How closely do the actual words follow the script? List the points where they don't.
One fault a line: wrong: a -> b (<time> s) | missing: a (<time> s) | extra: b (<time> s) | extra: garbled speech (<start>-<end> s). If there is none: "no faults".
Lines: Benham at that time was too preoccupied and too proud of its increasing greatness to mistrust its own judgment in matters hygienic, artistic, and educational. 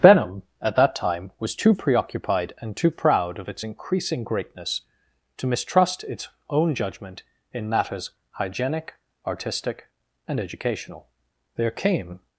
extra: There came (11.6 s)